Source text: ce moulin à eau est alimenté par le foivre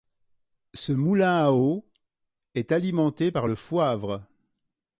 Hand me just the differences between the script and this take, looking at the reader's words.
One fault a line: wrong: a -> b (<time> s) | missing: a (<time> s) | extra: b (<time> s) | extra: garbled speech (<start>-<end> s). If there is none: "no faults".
no faults